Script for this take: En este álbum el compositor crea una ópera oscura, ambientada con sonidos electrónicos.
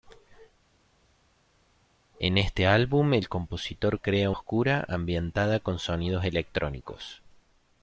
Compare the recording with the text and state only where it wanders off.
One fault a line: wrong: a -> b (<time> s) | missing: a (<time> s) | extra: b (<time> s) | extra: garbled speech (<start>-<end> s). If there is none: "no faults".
missing: una ópera (4.3 s)